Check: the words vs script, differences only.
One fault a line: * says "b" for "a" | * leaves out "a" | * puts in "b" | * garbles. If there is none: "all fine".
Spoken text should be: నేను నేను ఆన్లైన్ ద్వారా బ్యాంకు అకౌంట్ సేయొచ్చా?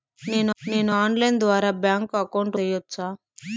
all fine